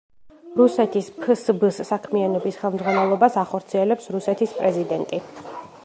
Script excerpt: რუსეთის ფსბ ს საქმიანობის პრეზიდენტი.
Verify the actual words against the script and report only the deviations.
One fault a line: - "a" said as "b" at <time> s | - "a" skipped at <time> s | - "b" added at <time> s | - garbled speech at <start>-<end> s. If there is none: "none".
- "ხელმძღვანელობას ახორციელებს რუსეთის" added at 2.6 s